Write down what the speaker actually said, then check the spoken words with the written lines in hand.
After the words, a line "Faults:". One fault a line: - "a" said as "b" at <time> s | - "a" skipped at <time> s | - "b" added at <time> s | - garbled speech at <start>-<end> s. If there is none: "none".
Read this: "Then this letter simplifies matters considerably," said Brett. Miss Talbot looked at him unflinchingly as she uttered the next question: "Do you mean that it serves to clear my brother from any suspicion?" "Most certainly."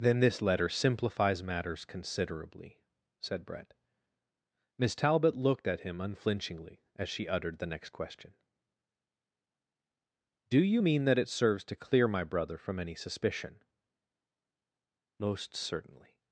"Then this letter simplifies matters considerably," said Brett. Miss Talbot looked at him unflinchingly as she uttered the next question: "Do you mean that it serves to clear my brother from any suspicion?" "Most certainly."
Faults:
none